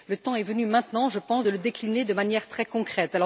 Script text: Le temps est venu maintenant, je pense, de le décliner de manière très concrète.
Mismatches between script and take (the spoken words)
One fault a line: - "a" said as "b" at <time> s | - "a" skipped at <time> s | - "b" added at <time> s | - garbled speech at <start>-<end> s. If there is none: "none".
none